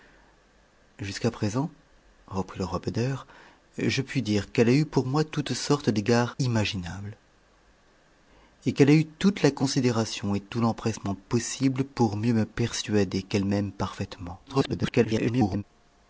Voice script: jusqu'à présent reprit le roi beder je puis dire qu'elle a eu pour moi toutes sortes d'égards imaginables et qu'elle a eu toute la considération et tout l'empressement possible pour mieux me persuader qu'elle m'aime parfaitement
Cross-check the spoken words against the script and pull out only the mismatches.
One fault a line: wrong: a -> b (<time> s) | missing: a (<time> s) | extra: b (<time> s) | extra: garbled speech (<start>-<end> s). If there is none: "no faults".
extra: garbled speech (14.5-15.6 s)